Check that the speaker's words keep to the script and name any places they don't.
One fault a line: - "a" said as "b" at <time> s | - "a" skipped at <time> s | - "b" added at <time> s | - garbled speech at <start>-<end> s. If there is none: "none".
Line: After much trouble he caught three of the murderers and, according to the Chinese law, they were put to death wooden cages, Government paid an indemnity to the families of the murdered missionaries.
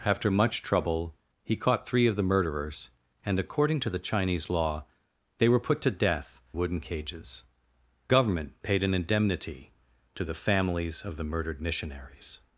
none